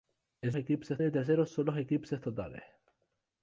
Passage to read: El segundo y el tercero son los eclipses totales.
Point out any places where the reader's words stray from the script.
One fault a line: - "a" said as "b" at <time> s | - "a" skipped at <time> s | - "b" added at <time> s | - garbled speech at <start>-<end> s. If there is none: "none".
- "segundo" said as "eclipses" at 0.6 s